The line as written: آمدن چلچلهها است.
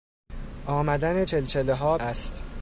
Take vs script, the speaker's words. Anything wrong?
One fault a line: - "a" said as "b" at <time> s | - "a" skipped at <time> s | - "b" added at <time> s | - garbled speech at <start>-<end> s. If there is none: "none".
none